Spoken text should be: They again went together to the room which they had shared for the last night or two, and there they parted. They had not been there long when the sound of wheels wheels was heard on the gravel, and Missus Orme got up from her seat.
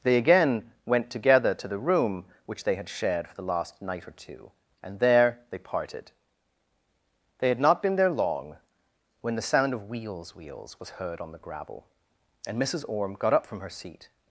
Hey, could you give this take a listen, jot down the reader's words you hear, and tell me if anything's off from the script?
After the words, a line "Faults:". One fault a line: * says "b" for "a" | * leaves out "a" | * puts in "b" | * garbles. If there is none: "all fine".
They again went together to the room which they had shared for the last night or two, and there they parted. They had not been there long when the sound of wheels wheels was heard on the gravel, and Missus Orme got up from her seat.
Faults:
all fine